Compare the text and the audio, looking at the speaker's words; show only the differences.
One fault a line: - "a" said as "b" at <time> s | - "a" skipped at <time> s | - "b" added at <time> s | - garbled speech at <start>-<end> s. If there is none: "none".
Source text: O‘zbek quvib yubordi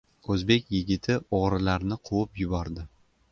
- "yigiti o‘g‘rilarni" added at 0.8 s